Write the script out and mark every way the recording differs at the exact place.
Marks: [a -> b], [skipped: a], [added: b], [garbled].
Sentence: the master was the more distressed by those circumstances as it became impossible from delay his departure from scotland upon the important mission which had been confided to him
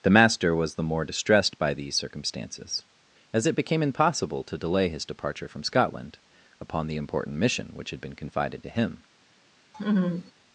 the master was the more distressed by [those -> these] circumstances as it became impossible [from -> to] delay his departure from scotland upon the important mission which had been confided to him